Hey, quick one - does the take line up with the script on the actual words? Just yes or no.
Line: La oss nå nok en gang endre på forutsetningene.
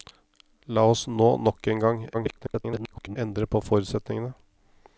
no